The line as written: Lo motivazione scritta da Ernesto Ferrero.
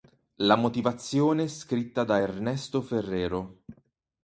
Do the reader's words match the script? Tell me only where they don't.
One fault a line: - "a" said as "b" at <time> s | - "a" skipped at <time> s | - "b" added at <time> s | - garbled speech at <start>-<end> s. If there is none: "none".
- "Lo" said as "La" at 0.4 s